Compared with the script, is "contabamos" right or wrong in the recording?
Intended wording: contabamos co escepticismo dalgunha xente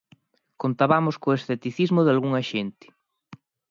right